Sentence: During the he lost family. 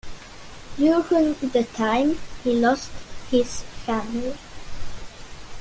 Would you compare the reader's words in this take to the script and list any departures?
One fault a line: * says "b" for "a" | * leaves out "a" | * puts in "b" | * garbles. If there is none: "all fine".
* puts in "time"
* puts in "his"